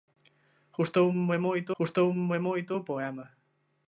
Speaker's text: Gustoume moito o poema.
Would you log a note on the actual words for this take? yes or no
yes